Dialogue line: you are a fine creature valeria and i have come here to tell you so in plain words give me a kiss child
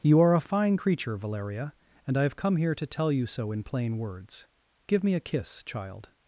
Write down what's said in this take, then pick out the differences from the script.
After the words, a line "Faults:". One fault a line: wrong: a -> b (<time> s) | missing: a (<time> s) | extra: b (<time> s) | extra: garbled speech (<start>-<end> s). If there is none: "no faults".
you are a fine creature valeria and i have come here to tell you so in plain words give me a kiss child
Faults:
no faults